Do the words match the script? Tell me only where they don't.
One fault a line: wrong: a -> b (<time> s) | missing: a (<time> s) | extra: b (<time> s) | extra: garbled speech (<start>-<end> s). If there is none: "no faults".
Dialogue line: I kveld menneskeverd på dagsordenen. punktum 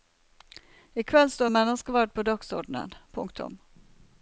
extra: står (1.3 s)